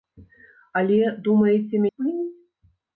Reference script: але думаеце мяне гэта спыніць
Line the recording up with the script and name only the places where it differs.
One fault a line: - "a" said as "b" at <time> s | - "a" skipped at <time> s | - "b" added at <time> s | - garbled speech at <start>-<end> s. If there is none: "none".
- "мяне гэта" skipped at 1.9 s